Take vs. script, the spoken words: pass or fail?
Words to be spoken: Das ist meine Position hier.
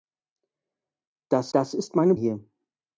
fail